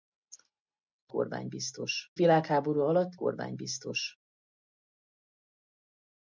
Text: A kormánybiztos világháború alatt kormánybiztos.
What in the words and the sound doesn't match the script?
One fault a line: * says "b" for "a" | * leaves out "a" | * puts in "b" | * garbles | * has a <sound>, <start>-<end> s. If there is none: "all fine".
all fine